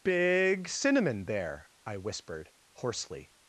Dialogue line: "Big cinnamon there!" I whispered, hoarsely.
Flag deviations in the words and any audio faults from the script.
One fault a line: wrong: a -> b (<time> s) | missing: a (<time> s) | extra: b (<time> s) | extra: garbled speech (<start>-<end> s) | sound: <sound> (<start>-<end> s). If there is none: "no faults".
no faults